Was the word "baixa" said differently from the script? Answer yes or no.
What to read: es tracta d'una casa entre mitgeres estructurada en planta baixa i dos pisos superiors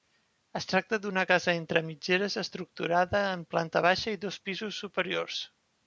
no